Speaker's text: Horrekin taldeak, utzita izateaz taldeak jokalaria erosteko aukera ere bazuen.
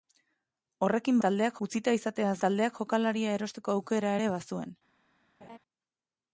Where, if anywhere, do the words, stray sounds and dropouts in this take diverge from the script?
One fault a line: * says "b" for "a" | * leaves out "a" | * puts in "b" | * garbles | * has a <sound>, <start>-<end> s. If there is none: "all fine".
* has a laugh, 5.4-5.6 s